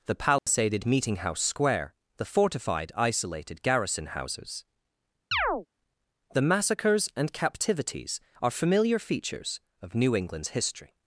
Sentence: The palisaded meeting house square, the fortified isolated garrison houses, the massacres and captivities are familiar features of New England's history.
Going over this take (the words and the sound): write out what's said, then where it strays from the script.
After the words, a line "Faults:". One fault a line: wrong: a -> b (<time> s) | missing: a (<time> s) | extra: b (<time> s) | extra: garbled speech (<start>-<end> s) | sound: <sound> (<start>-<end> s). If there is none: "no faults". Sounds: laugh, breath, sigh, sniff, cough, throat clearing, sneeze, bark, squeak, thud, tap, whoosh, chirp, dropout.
The palisaded meeting house square, the fortified isolated garrison houses, the massacres and captivities are familiar features of New England's history.
Faults:
sound: dropout (0.4-0.5 s)
sound: chirp (5.3-5.7 s)